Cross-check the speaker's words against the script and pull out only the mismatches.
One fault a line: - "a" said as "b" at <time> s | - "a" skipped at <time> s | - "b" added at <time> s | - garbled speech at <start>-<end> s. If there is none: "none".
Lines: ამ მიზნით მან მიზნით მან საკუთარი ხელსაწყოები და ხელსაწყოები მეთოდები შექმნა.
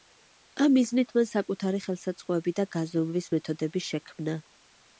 - "მიზნით მან" skipped at 1.3 s
- "ხელსაწყოები" said as "გაზომვის" at 2.8 s